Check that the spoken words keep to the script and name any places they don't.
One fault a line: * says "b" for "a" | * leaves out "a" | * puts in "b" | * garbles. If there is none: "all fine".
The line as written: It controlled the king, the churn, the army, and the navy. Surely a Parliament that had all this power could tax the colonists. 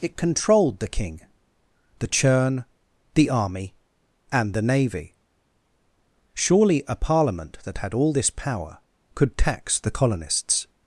all fine